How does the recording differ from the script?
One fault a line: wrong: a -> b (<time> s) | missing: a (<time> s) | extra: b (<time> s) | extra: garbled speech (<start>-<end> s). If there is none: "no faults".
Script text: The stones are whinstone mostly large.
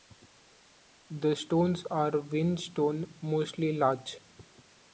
no faults